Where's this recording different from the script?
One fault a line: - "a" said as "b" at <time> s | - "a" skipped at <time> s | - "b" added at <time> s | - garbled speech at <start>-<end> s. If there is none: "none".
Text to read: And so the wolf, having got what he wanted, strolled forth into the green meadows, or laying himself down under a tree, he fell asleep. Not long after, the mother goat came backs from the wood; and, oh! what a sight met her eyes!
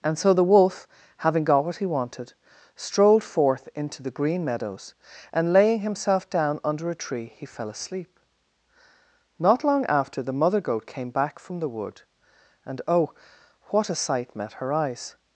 - "or" said as "and" at 5.3 s
- "backs" said as "back" at 11.1 s